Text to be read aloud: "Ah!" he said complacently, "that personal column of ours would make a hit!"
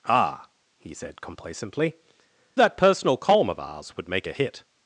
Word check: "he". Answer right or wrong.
right